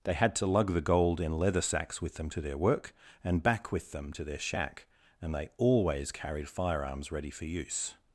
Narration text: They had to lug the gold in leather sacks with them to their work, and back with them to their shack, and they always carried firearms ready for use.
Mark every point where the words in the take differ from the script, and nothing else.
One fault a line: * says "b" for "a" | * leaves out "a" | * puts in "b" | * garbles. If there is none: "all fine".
all fine